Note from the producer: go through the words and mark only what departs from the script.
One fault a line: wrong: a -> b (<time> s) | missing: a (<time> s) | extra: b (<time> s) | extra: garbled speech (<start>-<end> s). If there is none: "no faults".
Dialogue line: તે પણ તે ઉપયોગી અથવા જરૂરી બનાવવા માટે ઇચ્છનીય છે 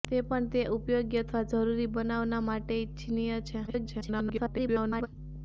extra: garbled speech (3.7-5.1 s)